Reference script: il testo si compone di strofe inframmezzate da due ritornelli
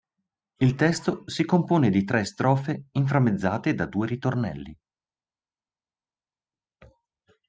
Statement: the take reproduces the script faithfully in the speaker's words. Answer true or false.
false